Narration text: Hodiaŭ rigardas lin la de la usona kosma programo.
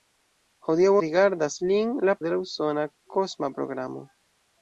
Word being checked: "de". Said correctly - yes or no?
yes